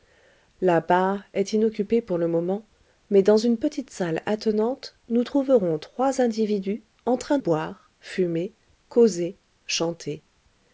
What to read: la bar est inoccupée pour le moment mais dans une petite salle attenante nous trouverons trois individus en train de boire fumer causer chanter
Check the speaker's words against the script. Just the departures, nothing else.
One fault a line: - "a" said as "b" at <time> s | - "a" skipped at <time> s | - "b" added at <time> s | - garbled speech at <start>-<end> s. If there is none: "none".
- "de" skipped at 7.4 s